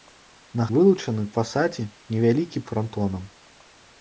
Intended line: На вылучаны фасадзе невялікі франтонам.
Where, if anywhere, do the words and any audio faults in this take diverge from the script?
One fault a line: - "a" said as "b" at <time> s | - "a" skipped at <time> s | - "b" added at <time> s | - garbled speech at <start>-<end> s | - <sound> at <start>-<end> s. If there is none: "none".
none